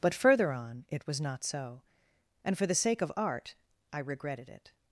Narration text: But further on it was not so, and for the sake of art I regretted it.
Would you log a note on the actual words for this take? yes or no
no